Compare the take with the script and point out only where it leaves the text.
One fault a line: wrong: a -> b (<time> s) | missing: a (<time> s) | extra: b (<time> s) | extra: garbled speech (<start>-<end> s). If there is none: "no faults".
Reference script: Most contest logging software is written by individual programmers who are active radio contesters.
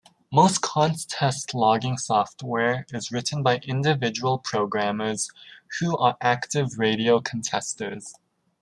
no faults